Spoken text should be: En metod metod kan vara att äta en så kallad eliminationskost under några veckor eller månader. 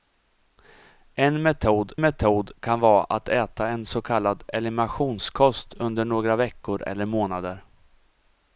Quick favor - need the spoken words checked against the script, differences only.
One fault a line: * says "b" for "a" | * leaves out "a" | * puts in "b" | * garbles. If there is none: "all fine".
all fine